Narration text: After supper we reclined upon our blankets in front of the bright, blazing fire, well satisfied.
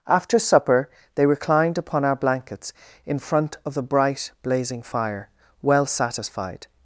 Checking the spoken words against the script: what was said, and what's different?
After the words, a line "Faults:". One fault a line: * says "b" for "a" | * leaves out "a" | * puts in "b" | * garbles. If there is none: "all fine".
After supper they reclined upon our blankets in front of the bright, blazing fire, well satisfied.
Faults:
* says "they" for "we"